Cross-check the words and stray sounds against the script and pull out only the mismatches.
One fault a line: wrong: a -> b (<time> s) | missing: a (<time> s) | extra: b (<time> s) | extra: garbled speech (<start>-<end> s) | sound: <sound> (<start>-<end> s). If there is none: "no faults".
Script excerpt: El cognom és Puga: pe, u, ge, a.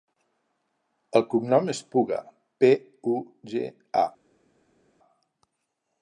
no faults